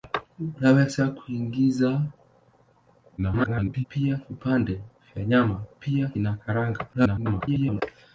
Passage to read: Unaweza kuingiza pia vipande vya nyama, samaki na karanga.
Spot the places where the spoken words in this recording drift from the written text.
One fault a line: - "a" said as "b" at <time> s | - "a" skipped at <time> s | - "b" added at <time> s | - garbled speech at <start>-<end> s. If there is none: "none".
- garbled speech at 3.2-3.9 s
- "samaki" said as "pia" at 5.8 s
- garbled speech at 6.9-7.8 s